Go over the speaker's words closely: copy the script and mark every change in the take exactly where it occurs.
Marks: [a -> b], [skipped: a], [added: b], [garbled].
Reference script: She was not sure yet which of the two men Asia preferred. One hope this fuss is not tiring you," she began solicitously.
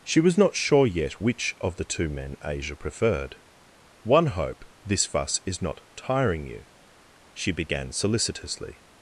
She was not sure yet which of the two men Asia preferred. One hope this fuss is not tiring you," she began solicitously.